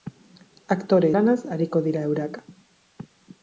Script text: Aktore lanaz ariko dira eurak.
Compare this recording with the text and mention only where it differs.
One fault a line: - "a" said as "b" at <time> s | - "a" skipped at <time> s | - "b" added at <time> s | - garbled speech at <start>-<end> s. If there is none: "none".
none